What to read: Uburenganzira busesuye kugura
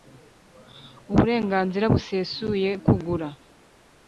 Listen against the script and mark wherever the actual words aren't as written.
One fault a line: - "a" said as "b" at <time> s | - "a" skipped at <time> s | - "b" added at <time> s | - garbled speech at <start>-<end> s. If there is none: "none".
none